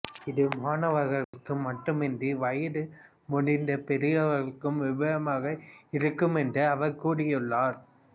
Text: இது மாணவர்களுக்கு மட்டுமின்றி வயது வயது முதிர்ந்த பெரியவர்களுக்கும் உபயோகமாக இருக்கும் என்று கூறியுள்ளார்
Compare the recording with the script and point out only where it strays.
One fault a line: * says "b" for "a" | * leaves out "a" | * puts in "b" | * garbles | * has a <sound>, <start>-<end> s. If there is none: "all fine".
* has a dropout, 1.2-1.3 s
* leaves out "வயது"
* puts in "அவர்"